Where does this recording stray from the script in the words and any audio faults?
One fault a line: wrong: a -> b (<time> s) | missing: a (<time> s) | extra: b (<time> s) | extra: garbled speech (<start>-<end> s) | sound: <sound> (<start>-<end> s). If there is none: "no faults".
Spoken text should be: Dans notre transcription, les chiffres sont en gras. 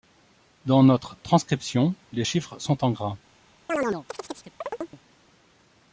sound: chirp (3.7-5.0 s)